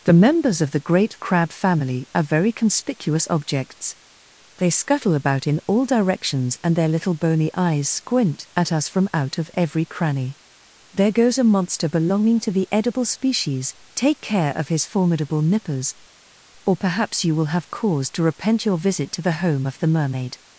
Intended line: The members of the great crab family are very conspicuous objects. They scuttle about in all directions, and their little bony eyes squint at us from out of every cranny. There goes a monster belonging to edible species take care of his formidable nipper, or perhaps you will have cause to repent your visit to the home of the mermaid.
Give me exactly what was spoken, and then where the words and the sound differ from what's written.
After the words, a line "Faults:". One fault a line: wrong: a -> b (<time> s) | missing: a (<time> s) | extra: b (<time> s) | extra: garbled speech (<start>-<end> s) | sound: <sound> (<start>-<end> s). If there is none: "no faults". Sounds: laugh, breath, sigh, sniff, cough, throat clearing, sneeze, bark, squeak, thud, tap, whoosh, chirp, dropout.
The members of the great crab family are very conspicuous objects. They scuttle about in all directions, and their little bony eyes squint at us from out of every cranny. There goes a monster belonging to the edible species take care of his formidable nippers, or perhaps you will have cause to repent your visit to the home of the mermaid.
Faults:
extra: the (12.5 s)
wrong: nipper -> nippers (15.4 s)